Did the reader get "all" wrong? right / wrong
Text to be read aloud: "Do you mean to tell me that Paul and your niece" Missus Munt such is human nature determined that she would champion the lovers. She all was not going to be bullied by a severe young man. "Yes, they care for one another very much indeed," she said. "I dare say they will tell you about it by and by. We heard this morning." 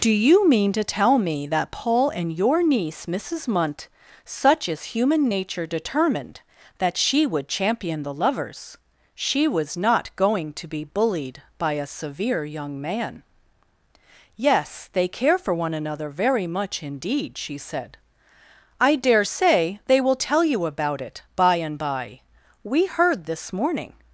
wrong